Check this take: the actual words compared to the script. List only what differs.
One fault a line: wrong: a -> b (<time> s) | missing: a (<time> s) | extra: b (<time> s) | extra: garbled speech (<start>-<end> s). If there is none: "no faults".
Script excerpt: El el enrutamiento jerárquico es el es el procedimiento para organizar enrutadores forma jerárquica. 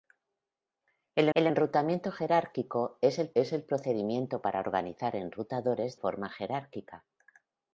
no faults